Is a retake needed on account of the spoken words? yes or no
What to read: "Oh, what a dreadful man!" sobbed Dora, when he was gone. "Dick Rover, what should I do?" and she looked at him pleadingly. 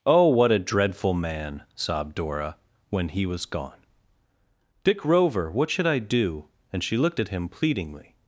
no